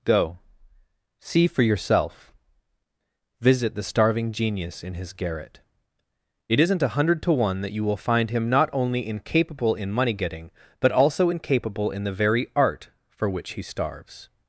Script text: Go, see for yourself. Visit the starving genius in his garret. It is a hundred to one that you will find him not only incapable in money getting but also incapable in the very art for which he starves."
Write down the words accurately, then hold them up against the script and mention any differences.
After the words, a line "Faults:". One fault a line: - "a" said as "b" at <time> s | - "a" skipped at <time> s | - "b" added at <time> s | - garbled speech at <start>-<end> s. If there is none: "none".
Go, see for yourself. Visit the starving genius in his garret. It isn't a hundred to one that you will find him not only incapable in money getting but also incapable in the very art for which he starves."
Faults:
- "is" said as "isn't" at 6.6 s